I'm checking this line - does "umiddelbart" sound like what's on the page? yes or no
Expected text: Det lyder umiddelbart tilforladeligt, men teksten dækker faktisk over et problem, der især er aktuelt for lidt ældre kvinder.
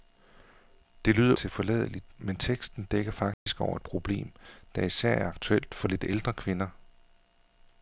no